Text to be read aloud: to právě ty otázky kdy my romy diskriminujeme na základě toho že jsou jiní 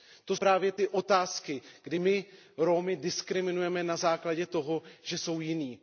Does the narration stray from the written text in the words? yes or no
no